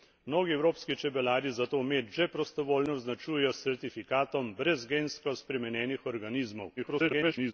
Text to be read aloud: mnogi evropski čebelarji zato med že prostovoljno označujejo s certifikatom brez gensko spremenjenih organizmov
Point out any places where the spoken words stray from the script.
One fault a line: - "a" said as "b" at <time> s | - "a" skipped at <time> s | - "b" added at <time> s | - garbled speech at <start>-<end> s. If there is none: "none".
- garbled speech at 6.8-7.5 s